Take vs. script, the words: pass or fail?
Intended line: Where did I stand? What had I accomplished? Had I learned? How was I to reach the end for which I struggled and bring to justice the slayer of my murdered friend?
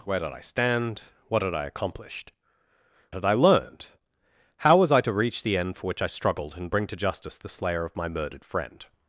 pass